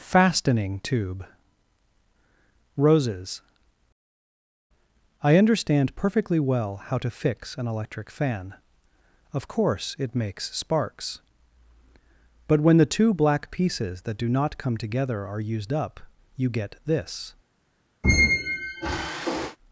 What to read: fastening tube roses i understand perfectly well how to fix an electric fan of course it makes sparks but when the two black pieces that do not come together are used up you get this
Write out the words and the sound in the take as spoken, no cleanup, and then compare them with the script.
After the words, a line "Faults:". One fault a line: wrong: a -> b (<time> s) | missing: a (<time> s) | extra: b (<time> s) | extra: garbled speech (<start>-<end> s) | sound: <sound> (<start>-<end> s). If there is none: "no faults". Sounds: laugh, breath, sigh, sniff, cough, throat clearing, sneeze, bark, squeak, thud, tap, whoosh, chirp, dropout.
fastening tube roses i understand perfectly well how to fix an electric fan of course it makes sparks but when the two black pieces that do not come together are used up you get this
Faults:
sound: squeak (18.0-19.6 s)